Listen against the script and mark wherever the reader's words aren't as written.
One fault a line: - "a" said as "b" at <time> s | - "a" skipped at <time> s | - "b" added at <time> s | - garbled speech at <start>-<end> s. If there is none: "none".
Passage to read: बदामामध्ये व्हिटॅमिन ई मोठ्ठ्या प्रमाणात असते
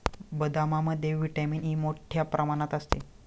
none